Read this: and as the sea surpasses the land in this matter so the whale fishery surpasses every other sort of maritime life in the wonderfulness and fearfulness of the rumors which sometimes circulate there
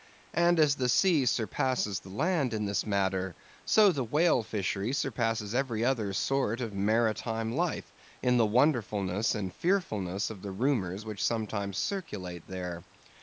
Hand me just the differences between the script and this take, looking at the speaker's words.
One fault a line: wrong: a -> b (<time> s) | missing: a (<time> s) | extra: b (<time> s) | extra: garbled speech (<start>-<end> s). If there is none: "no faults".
no faults